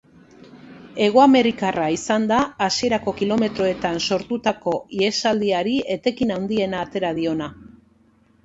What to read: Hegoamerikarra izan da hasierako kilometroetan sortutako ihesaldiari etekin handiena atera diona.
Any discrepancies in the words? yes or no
no